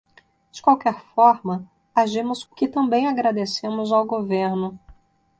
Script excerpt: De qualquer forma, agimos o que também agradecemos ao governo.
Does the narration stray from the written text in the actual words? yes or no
no